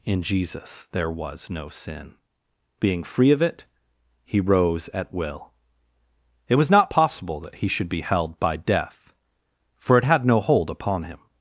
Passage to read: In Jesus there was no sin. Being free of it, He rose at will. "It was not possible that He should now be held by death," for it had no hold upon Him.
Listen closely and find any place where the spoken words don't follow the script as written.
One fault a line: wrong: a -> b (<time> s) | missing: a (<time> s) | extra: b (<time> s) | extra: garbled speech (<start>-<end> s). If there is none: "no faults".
missing: now (7.9 s)